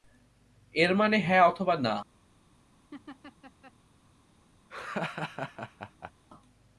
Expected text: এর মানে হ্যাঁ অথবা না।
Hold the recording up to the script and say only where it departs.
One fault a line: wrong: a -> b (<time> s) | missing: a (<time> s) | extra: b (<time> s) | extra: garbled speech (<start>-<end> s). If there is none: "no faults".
no faults